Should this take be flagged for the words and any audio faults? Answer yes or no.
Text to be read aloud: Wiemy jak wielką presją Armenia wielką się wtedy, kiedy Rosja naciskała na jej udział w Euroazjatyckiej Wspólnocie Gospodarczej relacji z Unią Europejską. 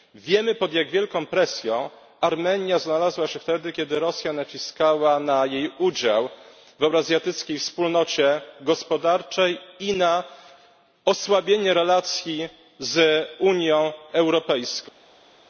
yes